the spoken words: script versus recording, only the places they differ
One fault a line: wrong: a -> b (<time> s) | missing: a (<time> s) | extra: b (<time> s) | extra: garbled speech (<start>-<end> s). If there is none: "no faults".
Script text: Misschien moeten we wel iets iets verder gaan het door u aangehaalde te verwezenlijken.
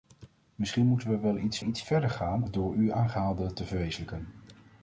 no faults